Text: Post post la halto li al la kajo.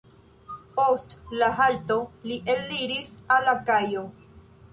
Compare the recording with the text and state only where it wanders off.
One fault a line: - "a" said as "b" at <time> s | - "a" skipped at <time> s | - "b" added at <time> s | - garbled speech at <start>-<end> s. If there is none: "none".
- "post" skipped at 1.1 s
- "eliris" added at 2.6 s